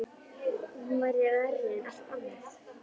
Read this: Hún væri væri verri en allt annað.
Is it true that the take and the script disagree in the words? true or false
true